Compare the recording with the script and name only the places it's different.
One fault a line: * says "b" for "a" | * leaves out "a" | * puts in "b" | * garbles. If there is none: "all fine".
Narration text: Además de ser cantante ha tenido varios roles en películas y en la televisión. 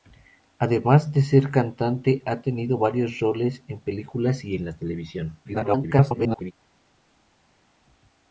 * garbles